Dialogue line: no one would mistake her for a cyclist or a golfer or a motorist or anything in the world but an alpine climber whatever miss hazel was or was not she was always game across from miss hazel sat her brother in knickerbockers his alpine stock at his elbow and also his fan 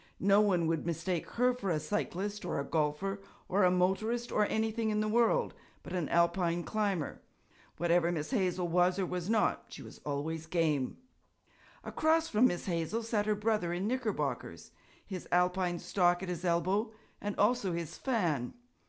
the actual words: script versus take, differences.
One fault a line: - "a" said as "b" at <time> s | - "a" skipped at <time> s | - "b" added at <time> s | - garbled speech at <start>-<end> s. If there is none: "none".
none